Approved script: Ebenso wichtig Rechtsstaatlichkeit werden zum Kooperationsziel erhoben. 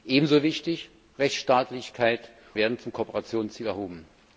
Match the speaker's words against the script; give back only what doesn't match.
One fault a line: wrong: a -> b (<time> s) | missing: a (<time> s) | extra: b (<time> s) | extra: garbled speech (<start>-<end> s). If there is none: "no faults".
no faults